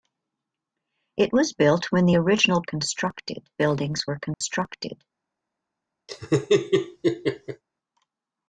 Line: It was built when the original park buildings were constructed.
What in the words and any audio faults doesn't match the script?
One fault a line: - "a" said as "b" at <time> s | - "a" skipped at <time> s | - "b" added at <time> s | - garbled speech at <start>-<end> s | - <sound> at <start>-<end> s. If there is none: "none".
- "park" said as "constructed" at 2.6 s
- dropout at 4.3-4.4 s
- laugh at 6.1-7.6 s